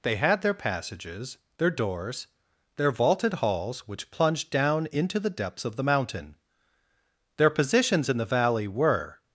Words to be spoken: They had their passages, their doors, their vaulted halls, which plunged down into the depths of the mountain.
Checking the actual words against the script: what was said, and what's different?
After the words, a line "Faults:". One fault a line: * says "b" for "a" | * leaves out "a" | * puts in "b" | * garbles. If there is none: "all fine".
They had their passages, their doors, their vaulted halls, which plunged down into the depths of the mountain. Their positions in the valley were
Faults:
* puts in "Their positions in the valley were"